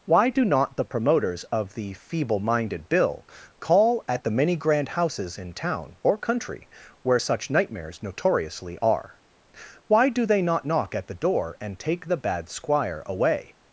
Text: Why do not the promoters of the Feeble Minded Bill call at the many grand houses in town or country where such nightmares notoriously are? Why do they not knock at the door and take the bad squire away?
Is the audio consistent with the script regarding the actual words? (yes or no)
yes